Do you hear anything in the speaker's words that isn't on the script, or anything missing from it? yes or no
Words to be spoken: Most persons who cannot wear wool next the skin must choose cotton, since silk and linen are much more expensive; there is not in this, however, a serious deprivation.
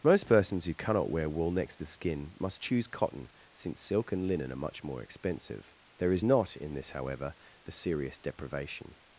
yes